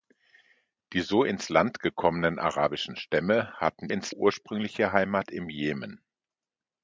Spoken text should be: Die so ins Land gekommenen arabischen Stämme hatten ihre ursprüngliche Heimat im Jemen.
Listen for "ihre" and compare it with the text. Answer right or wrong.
wrong